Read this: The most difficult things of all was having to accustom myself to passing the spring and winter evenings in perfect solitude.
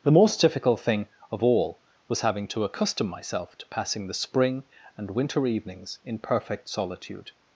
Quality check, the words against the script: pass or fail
fail